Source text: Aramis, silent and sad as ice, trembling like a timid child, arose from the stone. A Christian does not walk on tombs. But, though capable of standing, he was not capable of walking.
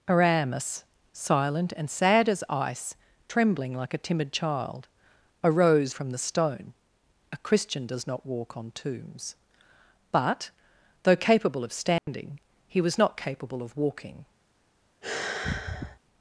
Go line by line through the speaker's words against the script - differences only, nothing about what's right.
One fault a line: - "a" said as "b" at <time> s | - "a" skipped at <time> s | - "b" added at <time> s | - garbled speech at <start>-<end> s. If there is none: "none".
none